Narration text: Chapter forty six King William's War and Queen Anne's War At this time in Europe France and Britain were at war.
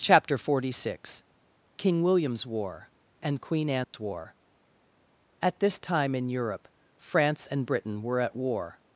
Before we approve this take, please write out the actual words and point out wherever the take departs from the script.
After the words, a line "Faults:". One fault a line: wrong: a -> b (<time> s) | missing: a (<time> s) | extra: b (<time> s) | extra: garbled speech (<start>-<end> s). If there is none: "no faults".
Chapter forty six King William's War and Queen Anne's War At this time in Europe France and Britain were at war.
Faults:
no faults